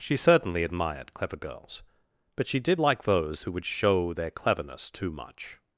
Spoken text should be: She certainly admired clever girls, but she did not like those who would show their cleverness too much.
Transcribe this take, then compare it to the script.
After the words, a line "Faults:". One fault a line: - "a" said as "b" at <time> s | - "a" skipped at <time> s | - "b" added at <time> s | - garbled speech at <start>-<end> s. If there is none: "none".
She certainly admired clever girls, but she did like those who would show their cleverness too much.
Faults:
- "not" skipped at 2.8 s